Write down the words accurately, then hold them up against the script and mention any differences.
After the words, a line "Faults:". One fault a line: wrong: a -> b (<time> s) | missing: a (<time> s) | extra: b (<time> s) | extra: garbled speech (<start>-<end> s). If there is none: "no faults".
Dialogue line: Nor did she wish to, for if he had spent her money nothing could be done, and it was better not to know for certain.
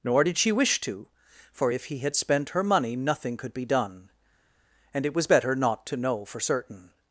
Nor did she wish to, for if he had spent her money nothing could be done, and it was better not to know for certain.
Faults:
no faults